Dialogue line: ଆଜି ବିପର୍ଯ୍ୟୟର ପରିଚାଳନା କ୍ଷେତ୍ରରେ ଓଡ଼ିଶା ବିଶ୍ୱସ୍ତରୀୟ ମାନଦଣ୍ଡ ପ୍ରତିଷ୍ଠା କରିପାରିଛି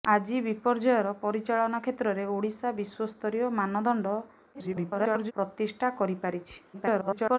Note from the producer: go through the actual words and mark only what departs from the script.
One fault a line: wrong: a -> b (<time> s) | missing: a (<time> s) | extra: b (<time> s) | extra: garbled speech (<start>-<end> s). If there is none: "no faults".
extra: garbled speech (4.5-5.3 s)
extra: garbled speech (6.7-7.4 s)